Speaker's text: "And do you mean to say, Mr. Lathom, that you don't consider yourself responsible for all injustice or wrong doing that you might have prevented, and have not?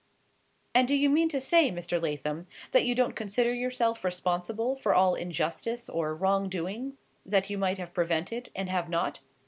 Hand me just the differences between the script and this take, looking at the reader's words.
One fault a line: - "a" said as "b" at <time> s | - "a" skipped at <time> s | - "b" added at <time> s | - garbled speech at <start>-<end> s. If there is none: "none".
none